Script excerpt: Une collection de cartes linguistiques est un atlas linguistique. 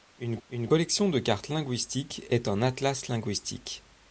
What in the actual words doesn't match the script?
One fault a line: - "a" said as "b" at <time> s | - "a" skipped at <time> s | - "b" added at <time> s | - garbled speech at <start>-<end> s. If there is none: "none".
- "une" added at 0.5 s